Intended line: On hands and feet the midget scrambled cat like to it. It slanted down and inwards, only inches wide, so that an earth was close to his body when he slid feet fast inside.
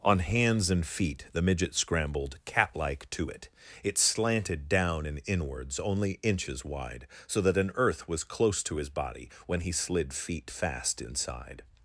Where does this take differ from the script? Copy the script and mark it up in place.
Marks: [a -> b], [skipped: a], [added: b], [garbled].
On hands and feet the midget scrambled cat like to it. It slanted down and inwards, only inches wide, so that an earth was close to his body when he slid feet fast inside.